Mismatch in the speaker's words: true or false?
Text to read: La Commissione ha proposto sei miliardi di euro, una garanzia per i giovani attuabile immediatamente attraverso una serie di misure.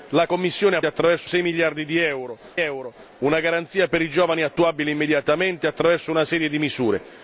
true